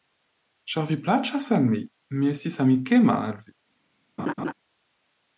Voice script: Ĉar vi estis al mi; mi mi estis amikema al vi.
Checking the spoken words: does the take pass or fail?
fail